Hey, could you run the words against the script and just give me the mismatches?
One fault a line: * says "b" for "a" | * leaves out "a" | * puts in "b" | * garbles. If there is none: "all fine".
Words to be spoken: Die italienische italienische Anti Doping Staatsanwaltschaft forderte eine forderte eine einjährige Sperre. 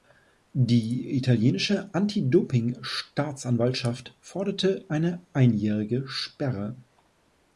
* leaves out "italienische"
* leaves out "forderte eine"